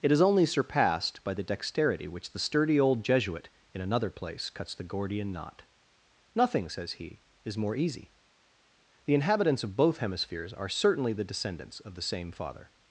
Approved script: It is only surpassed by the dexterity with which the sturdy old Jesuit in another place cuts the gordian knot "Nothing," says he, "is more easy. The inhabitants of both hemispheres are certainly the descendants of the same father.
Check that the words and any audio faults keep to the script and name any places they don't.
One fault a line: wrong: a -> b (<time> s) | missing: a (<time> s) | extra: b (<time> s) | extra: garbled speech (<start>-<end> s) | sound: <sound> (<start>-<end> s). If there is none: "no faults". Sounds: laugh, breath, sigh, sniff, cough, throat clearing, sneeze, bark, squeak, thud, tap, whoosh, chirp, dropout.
missing: with (2.1 s)